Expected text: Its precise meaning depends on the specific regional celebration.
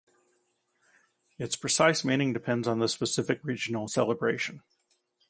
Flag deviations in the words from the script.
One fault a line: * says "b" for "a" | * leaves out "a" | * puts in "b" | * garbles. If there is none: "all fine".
all fine